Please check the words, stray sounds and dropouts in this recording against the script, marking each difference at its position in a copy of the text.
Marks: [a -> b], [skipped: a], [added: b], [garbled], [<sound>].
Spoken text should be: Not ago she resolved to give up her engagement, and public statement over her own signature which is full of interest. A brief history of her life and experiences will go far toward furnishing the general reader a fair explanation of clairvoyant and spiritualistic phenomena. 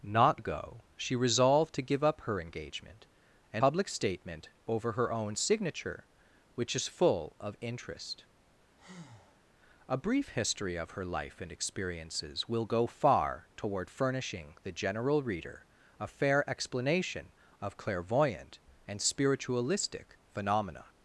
Not ago she resolved to give up her engagement, and public statement over her own signature which is full of interest. [breath] A brief history of her life and experiences will go far toward furnishing the general reader a fair explanation of clairvoyant and spiritualistic phenomena.